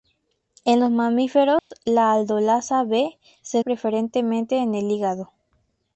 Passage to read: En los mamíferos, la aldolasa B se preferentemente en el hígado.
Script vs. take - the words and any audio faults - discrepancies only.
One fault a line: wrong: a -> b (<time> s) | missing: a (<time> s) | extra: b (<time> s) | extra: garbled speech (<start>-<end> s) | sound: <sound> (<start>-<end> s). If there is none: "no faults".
sound: dropout (1.6-1.7 s)